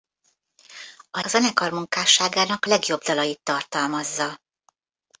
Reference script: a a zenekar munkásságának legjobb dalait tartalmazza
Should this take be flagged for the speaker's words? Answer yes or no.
no